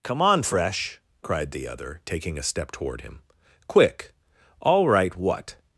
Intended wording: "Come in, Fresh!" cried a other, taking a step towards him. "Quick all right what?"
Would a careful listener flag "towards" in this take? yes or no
yes